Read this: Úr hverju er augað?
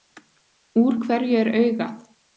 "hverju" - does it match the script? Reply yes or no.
yes